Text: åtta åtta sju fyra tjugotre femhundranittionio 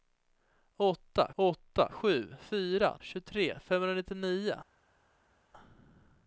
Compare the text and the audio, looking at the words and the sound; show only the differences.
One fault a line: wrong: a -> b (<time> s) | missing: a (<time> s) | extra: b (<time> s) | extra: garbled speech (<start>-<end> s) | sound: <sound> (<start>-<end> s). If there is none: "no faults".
no faults